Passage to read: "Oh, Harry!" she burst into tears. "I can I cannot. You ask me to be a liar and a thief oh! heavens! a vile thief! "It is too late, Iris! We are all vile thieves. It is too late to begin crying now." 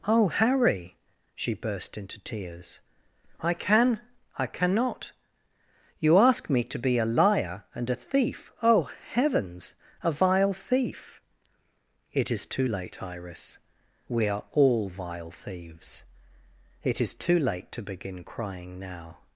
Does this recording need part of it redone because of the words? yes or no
no